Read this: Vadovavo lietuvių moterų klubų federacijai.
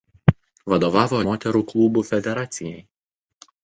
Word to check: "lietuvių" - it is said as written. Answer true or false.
false